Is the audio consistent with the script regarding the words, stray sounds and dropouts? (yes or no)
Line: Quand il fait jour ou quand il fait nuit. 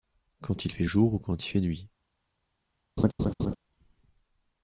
no